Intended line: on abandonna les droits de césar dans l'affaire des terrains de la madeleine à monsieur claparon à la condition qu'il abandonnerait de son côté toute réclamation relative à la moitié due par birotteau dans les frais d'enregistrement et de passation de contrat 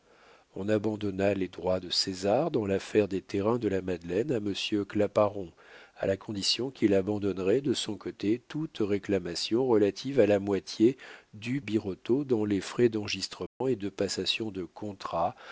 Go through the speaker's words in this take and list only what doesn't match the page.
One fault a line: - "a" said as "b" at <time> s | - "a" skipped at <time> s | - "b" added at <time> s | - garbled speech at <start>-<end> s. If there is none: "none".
- "par" skipped at 11.6 s